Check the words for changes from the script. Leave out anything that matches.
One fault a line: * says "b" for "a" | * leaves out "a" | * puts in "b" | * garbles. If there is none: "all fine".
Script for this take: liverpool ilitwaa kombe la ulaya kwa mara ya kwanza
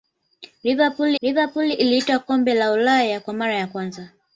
* puts in "liverpool"